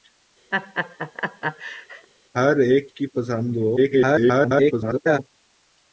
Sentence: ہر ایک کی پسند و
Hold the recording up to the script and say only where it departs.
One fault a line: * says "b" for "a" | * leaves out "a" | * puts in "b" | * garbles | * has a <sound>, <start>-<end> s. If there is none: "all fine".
* has a laugh, 0.5-2.1 s
* garbles